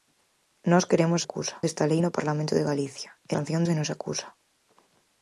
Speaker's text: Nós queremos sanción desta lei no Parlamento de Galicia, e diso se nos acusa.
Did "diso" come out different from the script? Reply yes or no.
yes